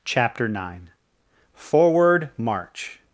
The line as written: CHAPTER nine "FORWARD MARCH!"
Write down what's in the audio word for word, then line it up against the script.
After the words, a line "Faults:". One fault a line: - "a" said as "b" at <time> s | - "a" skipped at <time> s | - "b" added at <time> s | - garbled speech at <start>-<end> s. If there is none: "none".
CHAPTER nine "FORWARD MARCH!"
Faults:
none